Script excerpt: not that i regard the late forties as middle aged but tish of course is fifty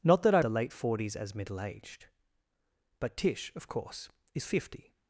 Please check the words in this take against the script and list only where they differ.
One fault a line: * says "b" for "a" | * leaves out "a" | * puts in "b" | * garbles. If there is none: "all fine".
* leaves out "regard"